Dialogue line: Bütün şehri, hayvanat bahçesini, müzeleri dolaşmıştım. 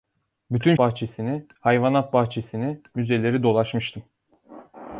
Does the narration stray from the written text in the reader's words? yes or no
yes